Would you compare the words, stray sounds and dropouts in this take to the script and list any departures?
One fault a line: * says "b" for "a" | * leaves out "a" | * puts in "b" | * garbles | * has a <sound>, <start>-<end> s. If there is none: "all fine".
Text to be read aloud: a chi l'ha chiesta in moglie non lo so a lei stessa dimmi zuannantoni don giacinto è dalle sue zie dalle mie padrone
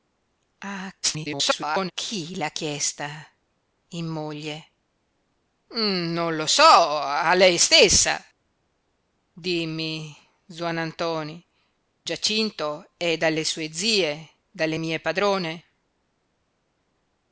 * garbles
* leaves out "don"